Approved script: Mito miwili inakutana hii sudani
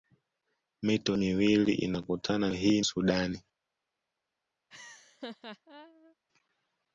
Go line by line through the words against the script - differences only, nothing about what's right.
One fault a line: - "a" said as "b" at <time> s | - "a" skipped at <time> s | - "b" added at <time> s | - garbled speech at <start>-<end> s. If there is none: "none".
none